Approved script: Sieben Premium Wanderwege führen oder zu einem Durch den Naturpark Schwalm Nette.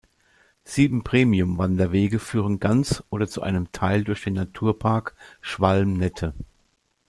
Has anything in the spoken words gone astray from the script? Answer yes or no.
yes